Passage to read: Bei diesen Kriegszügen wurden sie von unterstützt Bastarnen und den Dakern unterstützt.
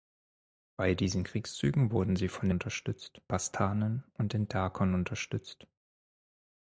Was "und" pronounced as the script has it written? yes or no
yes